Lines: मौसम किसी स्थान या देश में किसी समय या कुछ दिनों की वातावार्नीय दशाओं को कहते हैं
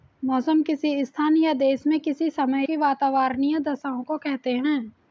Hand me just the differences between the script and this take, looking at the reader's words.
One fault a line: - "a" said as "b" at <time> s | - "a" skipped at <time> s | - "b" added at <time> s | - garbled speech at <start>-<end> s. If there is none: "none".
- "या कुछ दिनों" skipped at 2.7 s